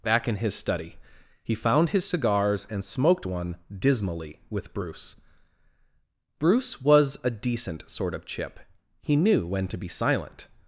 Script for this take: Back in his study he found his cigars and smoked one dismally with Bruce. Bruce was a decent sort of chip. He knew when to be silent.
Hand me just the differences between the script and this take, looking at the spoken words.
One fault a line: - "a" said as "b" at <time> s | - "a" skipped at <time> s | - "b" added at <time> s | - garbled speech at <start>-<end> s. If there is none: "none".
none